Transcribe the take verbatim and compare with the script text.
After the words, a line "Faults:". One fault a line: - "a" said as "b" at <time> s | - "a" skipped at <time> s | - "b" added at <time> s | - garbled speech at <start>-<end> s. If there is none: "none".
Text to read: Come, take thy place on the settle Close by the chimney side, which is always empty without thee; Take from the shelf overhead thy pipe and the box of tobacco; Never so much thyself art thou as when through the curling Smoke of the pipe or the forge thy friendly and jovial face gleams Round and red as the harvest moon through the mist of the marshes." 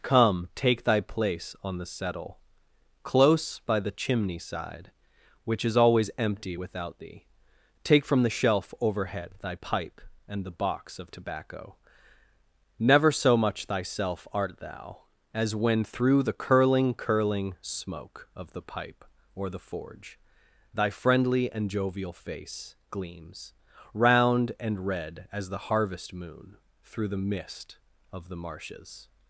Come, take thy place on the settle Close by the chimney side, which is always empty without thee; Take from the shelf overhead thy pipe and the box of tobacco; Never so much thyself art thou as when through the curling curling Smoke of the pipe or the forge thy friendly and jovial face gleams Round and red as the harvest moon through the mist of the marshes."
Faults:
- "curling" added at 16.9 s